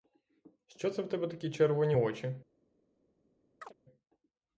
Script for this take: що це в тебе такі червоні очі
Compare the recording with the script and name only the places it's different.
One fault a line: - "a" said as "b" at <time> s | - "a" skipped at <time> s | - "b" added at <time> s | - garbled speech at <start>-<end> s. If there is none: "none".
none